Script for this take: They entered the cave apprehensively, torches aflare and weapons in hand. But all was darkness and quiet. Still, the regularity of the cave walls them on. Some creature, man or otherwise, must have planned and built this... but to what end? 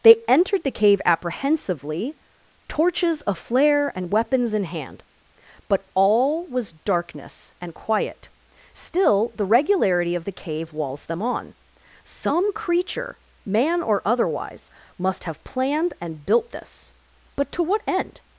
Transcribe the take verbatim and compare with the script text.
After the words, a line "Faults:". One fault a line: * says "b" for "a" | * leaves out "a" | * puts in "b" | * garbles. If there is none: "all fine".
They entered the cave apprehensively, torches aflare and weapons in hand. But all was darkness and quiet. Still, the regularity of the cave walls them on. Some creature, man or otherwise, must have planned and built this... but to what end?
Faults:
all fine